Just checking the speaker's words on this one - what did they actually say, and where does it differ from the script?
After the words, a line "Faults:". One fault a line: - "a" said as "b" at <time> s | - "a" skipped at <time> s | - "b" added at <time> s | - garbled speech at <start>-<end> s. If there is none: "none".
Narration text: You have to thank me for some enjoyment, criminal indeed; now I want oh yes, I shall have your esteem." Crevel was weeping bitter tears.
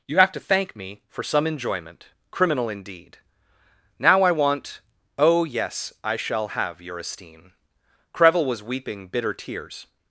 You have to thank me for some enjoyment, criminal indeed; now I want oh yes, I shall have your esteem." Crevel was weeping bitter tears.
Faults:
none